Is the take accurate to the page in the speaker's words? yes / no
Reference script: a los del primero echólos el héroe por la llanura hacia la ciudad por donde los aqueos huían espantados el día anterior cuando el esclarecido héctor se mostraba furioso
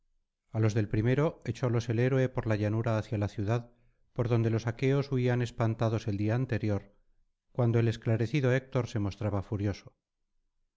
yes